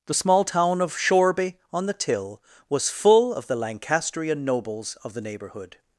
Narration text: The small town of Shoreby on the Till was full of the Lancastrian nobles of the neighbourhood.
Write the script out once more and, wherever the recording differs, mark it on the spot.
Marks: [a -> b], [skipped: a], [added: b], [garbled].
The small town of Shoreby on the Till was full of the Lancastrian nobles of the neighbourhood.